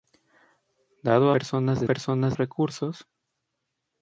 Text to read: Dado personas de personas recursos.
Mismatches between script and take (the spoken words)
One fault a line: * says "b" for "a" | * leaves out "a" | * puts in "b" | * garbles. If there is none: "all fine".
all fine